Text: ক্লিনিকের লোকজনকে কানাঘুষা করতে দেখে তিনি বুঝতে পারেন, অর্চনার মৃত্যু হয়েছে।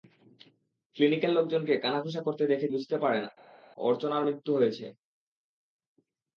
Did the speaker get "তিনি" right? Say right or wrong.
wrong